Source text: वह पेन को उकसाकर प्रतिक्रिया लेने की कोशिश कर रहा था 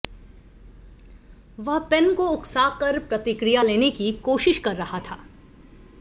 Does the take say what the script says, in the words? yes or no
yes